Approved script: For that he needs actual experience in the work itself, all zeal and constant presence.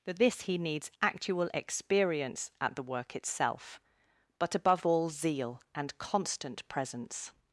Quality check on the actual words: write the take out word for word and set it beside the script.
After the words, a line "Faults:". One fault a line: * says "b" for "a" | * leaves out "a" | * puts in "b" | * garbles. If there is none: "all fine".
For this he needs actual experience at the work itself, but above all zeal and constant presence.
Faults:
* says "this" for "that"
* says "at" for "in"
* puts in "but above"